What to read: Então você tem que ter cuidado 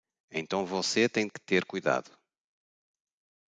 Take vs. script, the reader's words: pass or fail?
pass